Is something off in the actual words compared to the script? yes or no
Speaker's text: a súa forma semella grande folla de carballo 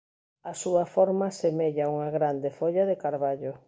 yes